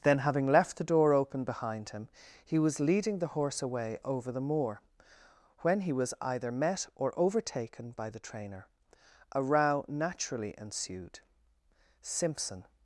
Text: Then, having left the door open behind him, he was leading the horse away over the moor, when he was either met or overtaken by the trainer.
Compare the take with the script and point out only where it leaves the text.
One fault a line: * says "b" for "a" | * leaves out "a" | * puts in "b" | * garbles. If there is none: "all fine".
* puts in "A row naturally ensued Simpson"